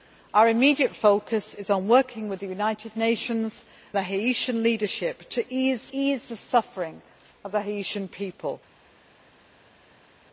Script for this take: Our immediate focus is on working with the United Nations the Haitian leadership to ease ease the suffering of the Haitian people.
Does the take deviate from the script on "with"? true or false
false